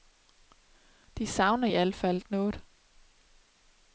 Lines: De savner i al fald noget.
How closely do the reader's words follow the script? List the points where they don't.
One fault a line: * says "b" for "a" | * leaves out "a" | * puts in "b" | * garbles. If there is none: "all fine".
all fine